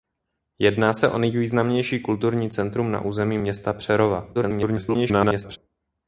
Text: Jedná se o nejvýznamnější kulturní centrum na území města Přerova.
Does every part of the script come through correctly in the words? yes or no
no